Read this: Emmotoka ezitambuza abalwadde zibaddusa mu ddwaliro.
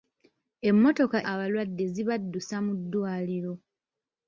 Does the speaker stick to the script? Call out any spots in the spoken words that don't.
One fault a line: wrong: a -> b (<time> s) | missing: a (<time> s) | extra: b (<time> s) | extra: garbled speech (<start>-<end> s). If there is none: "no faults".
missing: ezitambuza (1.2 s)